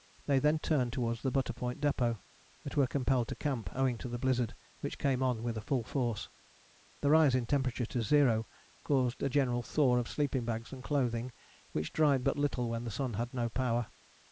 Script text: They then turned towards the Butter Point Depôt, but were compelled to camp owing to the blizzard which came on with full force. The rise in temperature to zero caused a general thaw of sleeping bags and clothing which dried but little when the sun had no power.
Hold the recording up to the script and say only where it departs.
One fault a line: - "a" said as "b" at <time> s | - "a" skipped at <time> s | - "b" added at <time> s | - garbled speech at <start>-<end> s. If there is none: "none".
none